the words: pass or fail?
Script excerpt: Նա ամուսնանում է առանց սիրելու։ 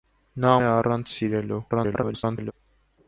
fail